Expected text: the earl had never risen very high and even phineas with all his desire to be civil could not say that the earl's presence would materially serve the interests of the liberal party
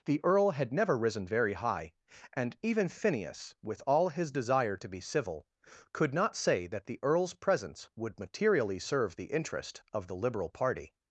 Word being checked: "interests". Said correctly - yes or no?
no